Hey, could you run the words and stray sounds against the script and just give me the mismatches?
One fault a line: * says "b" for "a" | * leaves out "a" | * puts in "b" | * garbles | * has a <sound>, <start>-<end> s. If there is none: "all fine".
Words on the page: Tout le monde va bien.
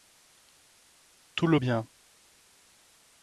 * leaves out "monde va"